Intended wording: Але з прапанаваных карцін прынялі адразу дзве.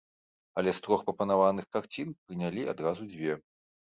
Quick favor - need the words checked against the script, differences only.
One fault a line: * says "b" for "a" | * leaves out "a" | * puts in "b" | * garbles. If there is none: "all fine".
* puts in "трох"